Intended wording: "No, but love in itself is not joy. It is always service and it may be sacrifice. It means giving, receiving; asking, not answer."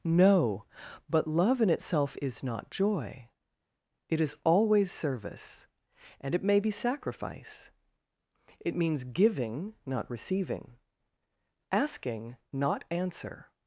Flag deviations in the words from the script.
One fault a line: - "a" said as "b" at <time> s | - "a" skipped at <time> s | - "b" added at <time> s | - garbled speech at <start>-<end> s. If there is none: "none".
- "not" added at 9.8 s